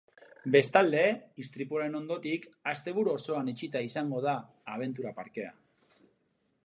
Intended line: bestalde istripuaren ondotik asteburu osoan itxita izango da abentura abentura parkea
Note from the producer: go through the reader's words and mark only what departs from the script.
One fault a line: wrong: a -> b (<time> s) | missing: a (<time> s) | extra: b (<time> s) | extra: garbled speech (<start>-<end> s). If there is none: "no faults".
missing: abentura (5.1 s)